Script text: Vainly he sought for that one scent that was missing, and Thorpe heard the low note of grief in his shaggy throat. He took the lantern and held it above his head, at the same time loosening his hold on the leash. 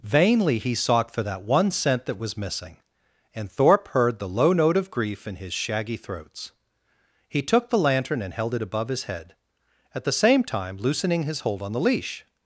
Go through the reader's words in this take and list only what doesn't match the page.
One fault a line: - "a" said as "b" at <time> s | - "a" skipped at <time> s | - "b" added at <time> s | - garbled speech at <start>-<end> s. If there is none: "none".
- "throat" said as "throats" at 6.0 s